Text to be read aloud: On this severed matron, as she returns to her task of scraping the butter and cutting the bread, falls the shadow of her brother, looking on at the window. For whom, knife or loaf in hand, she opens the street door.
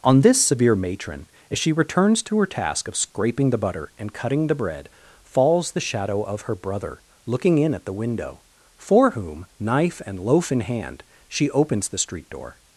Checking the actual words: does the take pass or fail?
fail